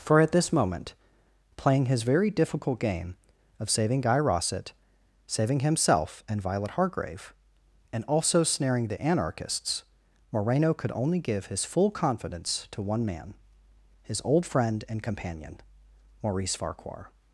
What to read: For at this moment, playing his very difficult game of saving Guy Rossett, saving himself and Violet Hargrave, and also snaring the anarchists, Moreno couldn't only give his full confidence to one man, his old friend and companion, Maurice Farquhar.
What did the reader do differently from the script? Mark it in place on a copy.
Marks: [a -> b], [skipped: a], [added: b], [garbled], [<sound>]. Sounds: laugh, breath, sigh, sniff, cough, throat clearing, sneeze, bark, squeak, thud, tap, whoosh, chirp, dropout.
For at this moment, playing his very difficult game of saving Guy Rossett, saving himself and Violet Hargrave, and also snaring the anarchists, Moreno [couldn't -> could] only give his full confidence to one man, his old friend and companion, Maurice Farquhar.